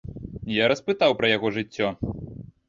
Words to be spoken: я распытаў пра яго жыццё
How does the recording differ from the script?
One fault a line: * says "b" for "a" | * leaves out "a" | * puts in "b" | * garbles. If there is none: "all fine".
all fine